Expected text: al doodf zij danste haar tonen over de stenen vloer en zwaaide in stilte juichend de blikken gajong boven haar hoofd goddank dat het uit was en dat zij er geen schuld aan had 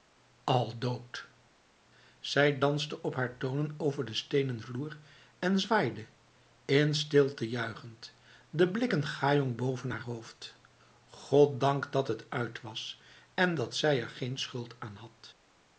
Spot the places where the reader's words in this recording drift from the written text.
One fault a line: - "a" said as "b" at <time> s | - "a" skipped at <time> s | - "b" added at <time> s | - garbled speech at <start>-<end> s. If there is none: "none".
- "op" added at 3.0 s